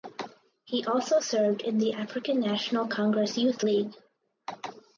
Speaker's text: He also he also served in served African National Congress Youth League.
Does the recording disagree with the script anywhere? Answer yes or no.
yes